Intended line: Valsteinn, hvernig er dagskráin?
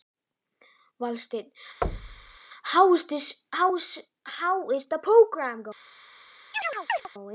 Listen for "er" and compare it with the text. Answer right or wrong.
right